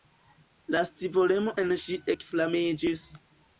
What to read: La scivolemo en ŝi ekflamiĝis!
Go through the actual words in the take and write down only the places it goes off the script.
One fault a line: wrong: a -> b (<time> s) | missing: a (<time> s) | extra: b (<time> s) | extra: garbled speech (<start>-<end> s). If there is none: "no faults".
no faults